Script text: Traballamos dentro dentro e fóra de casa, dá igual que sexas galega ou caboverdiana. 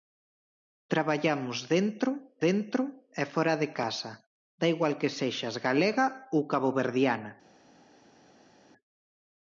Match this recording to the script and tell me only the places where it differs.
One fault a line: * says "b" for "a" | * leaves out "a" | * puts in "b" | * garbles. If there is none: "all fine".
all fine